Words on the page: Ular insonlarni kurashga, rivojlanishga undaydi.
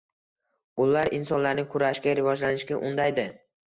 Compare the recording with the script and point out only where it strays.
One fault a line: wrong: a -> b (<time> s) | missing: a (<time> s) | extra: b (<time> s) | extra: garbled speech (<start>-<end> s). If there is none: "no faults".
no faults